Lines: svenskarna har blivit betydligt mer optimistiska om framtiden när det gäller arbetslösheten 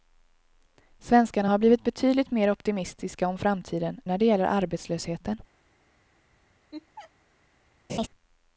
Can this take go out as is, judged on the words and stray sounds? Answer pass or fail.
fail